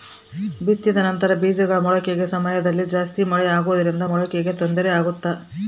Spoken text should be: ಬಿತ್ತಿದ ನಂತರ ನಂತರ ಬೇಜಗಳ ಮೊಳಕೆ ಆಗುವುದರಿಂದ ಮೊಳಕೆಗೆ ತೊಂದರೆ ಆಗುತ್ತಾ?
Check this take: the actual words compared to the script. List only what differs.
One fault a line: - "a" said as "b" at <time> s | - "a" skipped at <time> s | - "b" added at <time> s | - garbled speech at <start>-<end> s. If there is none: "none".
- "ನಂತರ" skipped at 1.3 s
- "ಸಮಯದಲ್ಲಿ ಜಾಸ್ತಿ ಮಳೆ" added at 2.3 s